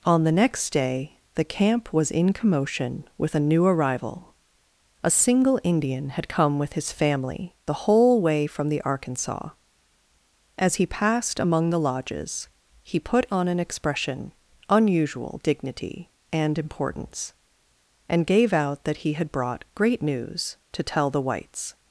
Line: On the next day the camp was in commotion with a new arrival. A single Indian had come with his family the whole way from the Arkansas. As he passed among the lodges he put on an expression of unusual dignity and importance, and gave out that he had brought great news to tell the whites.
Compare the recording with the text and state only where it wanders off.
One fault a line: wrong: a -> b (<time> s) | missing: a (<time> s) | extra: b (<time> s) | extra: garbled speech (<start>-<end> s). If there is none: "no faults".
missing: of (14.3 s)